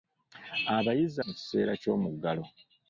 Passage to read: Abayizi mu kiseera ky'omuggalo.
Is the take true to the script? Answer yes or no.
yes